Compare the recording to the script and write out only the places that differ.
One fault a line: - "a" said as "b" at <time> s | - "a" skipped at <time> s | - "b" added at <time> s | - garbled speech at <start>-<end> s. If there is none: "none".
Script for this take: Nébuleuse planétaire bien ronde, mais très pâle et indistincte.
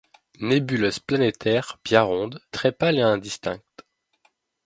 - "mais" skipped at 2.4 s